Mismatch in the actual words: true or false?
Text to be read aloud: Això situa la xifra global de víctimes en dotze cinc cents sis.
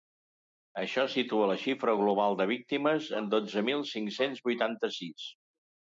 true